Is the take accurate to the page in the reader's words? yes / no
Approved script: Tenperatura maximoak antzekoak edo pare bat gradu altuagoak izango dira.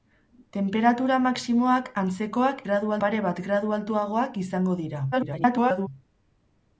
no